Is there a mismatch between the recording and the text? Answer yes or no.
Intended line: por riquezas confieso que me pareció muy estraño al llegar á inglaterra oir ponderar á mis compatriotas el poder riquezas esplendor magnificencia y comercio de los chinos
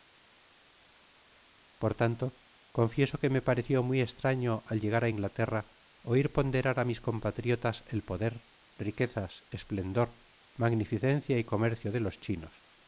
yes